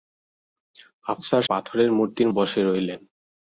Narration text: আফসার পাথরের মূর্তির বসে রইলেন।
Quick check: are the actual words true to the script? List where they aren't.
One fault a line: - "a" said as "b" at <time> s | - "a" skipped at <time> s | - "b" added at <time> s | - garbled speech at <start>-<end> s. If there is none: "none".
none